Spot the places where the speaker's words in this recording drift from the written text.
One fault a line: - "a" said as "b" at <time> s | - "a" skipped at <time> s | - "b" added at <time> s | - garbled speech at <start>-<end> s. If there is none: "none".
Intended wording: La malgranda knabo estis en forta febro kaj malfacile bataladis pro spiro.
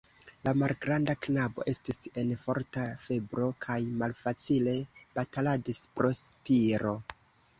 none